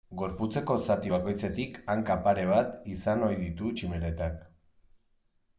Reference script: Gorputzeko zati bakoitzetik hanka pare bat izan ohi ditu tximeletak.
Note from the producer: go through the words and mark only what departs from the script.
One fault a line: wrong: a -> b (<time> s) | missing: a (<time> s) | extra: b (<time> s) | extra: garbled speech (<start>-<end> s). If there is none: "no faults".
no faults